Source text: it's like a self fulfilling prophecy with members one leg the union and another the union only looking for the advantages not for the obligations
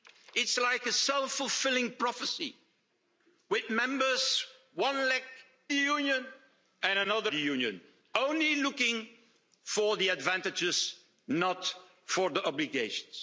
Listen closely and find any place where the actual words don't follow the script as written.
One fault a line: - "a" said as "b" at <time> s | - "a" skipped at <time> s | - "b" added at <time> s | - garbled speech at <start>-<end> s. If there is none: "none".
none